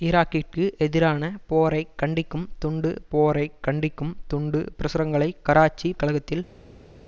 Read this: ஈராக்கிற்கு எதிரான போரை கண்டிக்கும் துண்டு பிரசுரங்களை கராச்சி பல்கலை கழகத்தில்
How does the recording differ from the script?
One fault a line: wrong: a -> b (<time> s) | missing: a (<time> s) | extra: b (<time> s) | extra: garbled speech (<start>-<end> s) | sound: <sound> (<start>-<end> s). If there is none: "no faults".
extra: போரை கண்டிக்கும் துண்டு (3.1 s)
missing: பல்கலை (5.9 s)